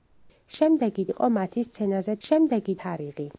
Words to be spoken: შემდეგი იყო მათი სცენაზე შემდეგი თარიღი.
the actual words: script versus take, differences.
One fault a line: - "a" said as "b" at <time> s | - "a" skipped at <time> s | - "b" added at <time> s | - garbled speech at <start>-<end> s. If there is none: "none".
none